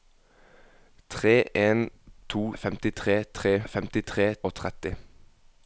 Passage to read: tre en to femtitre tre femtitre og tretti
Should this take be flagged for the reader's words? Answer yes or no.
no